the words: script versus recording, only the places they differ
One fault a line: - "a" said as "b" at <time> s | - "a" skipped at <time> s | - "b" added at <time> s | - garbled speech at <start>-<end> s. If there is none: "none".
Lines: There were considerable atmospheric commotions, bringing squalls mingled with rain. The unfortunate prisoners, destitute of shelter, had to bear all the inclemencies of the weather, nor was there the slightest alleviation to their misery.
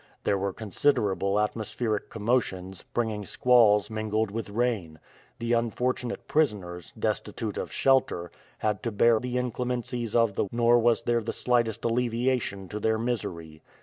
- "all" skipped at 9.2 s
- "weather" skipped at 10.4 s